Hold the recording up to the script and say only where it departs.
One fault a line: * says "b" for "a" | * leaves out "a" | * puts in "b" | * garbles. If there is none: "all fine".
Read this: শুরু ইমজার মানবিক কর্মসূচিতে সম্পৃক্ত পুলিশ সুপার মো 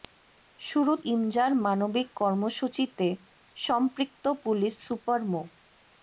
all fine